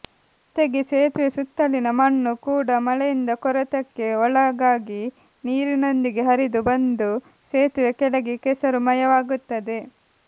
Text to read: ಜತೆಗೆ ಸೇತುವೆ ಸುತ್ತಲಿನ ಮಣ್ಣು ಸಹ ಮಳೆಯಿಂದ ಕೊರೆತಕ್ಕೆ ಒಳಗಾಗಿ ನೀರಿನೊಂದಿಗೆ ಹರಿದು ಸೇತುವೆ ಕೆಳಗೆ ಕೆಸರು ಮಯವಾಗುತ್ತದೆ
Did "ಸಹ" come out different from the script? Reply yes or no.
yes